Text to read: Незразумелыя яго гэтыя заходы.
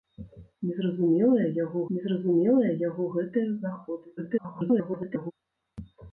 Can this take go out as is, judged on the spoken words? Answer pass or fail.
fail